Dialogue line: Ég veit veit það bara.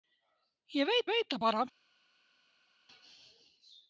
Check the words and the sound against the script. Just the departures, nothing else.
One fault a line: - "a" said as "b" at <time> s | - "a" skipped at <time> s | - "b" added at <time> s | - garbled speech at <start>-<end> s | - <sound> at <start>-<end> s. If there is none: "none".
none